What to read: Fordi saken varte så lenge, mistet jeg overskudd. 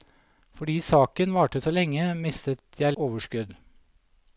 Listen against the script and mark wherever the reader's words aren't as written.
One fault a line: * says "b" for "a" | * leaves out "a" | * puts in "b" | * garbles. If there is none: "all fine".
all fine